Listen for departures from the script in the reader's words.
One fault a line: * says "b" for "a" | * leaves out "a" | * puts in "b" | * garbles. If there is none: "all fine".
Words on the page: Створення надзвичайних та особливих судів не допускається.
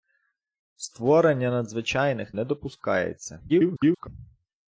* leaves out "та особливих судів"
* garbles